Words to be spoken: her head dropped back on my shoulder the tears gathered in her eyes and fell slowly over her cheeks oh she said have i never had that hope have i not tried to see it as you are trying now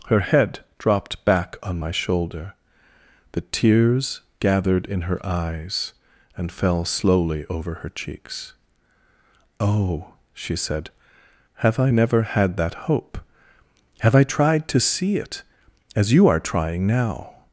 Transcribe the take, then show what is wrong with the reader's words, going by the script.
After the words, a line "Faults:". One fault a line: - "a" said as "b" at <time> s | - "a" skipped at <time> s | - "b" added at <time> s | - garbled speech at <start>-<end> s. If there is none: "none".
her head dropped back on my shoulder the tears gathered in her eyes and fell slowly over her cheeks oh she said have i never had that hope have i tried to see it as you are trying now
Faults:
- "not" skipped at 14.2 s